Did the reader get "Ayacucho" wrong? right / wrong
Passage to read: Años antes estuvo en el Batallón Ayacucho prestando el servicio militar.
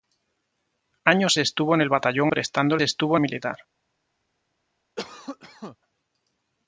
wrong